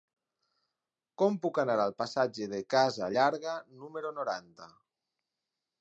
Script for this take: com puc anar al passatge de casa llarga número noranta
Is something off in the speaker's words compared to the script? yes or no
no